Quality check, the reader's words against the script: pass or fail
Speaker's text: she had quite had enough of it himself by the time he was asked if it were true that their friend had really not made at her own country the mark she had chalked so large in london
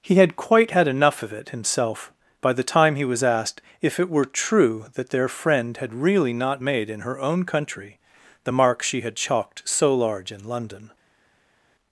fail